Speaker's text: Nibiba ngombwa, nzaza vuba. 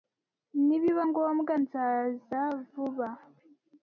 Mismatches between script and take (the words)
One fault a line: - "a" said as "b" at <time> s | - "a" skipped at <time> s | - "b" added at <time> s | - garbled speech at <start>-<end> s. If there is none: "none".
none